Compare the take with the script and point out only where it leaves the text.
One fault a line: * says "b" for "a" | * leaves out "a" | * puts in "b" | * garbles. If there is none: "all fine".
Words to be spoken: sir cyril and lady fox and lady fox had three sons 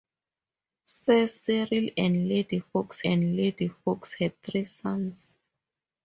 all fine